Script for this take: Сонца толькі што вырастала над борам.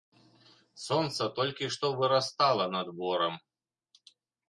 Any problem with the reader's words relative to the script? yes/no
no